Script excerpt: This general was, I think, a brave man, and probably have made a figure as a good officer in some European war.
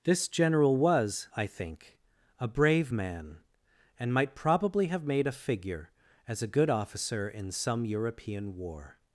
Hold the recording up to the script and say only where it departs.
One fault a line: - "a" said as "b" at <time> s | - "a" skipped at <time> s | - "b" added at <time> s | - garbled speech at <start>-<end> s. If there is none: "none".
- "might" added at 4.1 s